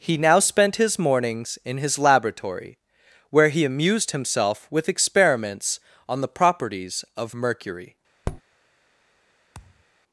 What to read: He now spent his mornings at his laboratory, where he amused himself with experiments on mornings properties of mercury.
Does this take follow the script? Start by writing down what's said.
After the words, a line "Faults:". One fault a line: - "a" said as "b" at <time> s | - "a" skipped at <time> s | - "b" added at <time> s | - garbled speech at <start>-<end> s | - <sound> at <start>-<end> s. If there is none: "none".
He now spent his mornings in his laboratory, where he amused himself with experiments on the properties of mercury.
Faults:
- "at" said as "in" at 1.6 s
- "mornings" said as "the" at 6.2 s
- tap at 8.3-8.4 s
- thud at 9.5-9.9 s